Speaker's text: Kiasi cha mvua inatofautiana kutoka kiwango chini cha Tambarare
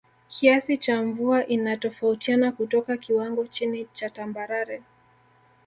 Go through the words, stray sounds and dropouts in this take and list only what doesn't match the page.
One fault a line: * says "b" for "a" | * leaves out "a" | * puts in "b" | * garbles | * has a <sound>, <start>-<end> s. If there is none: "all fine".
all fine